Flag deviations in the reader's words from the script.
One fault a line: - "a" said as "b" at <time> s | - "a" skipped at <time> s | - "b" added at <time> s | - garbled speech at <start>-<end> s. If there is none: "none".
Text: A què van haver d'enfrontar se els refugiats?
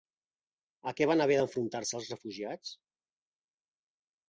none